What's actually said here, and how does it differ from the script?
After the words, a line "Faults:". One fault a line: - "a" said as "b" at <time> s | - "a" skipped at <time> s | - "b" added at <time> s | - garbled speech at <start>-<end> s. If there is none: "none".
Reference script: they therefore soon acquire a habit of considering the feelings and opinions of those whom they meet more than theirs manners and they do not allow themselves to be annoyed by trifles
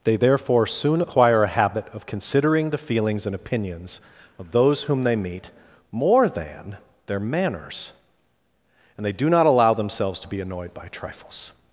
they therefore soon acquire a habit of considering the feelings and opinions of those whom they meet more than their manners and they do not allow themselves to be annoyed by trifles
Faults:
- "theirs" said as "their" at 7.1 s